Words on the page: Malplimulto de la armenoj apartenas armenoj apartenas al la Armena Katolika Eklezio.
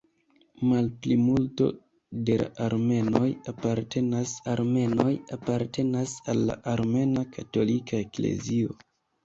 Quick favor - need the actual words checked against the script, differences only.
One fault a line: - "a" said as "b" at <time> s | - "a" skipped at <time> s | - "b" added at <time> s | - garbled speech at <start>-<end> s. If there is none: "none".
none